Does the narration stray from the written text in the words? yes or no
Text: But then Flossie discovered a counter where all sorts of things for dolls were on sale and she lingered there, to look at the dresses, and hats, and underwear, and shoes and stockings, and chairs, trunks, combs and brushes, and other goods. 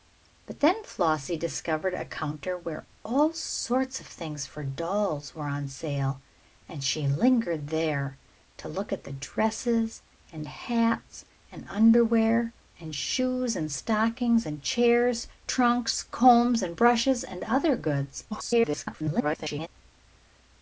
yes